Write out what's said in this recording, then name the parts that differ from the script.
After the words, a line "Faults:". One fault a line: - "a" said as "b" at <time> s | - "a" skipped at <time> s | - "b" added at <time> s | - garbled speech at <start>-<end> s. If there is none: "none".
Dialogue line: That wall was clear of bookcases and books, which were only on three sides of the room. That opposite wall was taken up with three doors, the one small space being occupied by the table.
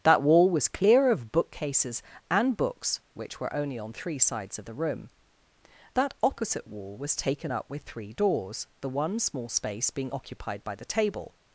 That wall was clear of bookcases and books, which were only on three sides of the room. That opposite wall was taken up with three doors, the one small space being occupied by the table.
Faults:
none